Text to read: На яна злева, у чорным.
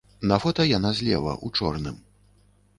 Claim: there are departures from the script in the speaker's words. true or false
true